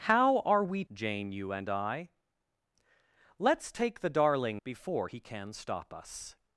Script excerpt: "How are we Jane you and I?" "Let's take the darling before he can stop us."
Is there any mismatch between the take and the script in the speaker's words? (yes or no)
no